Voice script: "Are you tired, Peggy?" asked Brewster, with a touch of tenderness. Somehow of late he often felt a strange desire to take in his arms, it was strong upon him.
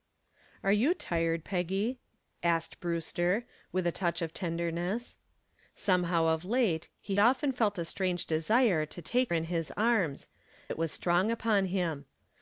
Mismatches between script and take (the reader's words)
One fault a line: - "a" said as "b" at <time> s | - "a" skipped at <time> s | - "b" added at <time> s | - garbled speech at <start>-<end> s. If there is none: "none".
none